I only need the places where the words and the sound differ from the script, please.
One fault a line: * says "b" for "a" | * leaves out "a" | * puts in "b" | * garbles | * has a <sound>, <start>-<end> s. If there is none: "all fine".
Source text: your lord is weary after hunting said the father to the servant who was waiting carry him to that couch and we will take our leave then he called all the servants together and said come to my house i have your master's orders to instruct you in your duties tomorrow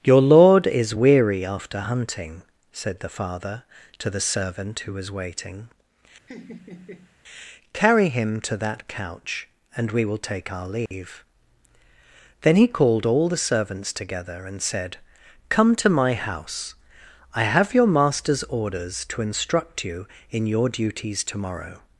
* has a laugh, 6.3-7.2 s
* has a dropout, 10.9-10.9 s